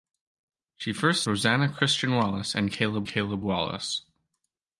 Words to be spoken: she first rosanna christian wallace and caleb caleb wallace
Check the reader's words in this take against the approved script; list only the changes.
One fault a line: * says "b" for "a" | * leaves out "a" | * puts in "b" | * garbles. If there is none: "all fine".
all fine